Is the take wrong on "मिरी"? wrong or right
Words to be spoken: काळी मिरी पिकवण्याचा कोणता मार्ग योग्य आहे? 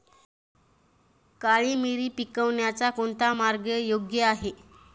right